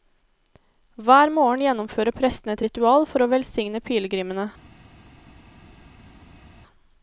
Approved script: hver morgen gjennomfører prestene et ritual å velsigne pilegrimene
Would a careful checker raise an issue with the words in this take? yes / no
yes